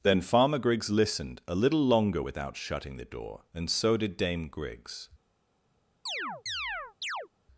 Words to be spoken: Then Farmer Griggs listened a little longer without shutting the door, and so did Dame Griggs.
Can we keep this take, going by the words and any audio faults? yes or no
no